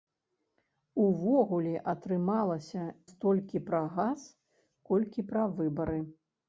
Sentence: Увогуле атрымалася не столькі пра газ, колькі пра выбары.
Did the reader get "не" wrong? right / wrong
wrong